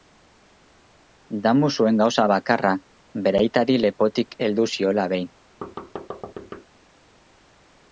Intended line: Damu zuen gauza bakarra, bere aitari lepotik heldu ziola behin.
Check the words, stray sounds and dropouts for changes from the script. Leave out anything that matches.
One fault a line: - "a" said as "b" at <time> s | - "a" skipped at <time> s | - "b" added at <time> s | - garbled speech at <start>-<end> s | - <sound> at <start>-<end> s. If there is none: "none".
- thud at 5.6-6.7 s